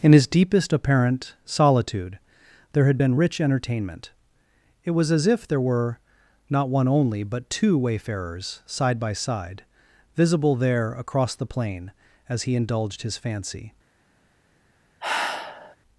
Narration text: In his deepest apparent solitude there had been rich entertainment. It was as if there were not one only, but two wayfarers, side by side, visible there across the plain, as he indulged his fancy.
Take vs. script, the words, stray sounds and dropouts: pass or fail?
fail